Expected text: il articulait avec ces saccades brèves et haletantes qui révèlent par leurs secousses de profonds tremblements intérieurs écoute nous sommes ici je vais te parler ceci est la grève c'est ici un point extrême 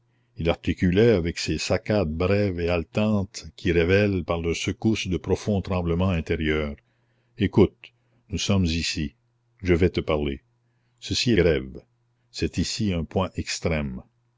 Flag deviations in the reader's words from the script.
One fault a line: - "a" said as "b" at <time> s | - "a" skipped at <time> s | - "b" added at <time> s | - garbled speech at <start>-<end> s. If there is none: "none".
- "la" skipped at 11.4 s